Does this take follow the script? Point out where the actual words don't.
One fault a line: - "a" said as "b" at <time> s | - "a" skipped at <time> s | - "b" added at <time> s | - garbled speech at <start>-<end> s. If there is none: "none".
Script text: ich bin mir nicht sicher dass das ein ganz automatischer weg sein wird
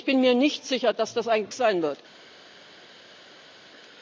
- "ganz automatischer weg" skipped at 1.5 s